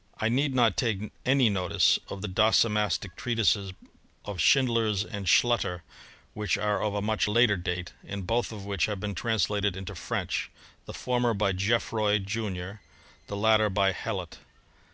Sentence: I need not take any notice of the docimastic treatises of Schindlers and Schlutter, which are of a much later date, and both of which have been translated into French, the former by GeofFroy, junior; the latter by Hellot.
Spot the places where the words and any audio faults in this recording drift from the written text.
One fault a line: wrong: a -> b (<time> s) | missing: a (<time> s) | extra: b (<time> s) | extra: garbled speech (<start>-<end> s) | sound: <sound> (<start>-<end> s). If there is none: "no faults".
no faults